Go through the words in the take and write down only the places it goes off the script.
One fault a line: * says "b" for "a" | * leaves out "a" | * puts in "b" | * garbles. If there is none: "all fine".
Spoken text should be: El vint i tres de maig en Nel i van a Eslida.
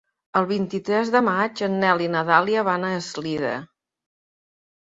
* puts in "na Dàlia"